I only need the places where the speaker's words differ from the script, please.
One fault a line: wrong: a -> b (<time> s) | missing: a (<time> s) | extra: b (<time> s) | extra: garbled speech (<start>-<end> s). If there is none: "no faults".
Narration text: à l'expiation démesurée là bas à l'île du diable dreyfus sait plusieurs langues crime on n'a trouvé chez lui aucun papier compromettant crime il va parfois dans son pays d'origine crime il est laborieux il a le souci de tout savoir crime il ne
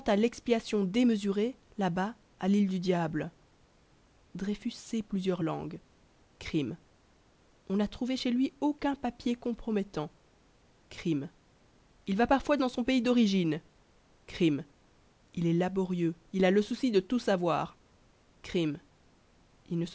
no faults